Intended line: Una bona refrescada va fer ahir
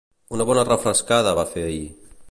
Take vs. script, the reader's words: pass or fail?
pass